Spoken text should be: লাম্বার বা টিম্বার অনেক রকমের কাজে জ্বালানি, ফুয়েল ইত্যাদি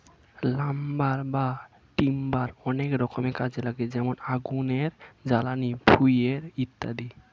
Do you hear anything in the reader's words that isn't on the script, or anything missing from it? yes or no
yes